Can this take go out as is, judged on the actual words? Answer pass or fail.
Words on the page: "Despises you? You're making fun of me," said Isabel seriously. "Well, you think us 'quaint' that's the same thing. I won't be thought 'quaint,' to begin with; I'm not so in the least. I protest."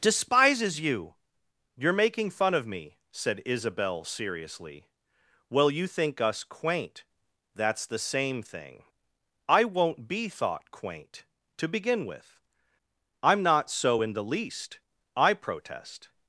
pass